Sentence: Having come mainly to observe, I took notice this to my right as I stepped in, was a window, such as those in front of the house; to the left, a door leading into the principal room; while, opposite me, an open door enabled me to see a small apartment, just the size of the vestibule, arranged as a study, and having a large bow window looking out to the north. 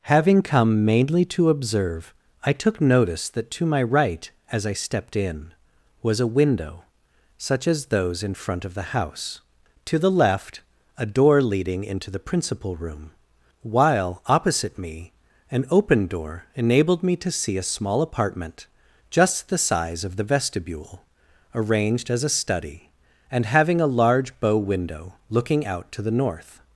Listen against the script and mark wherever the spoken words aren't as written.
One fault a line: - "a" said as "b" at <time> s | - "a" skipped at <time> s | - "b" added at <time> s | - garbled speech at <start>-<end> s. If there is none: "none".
- "this" said as "that" at 3.3 s